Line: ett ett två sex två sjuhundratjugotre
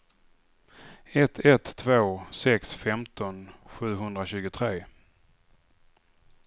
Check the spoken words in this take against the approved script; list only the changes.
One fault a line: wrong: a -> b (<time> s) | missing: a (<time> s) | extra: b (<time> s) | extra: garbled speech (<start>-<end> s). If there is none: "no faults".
wrong: två -> femton (2.7 s)